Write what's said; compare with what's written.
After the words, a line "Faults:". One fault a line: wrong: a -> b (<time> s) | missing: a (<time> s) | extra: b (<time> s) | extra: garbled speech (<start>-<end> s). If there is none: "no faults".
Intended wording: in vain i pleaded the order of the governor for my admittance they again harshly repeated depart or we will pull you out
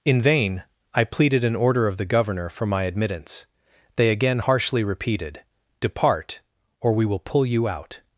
in vain i pleaded an order of the governor for my admittance they again harshly repeated depart or we will pull you out
Faults:
wrong: the -> an (1.4 s)